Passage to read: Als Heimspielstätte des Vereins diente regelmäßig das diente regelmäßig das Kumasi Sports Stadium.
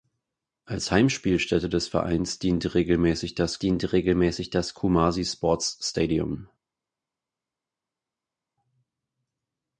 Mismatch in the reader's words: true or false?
false